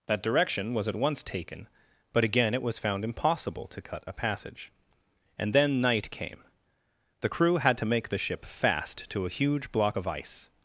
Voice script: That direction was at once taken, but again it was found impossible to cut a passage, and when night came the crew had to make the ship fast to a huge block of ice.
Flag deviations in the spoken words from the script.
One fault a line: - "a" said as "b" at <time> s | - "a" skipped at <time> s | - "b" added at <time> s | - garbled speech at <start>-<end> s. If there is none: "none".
- "when" said as "then" at 5.5 s